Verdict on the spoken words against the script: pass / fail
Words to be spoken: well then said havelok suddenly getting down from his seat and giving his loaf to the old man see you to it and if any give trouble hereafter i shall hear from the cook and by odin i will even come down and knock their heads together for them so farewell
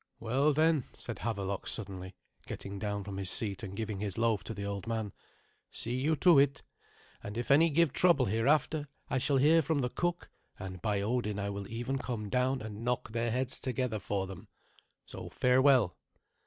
pass